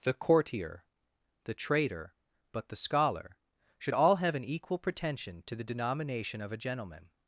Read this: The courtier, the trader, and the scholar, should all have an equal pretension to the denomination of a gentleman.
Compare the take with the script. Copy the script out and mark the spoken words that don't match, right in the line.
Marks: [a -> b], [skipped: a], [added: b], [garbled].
The courtier, the trader, [and -> but] the scholar, should all have an equal pretension to the denomination of a gentleman.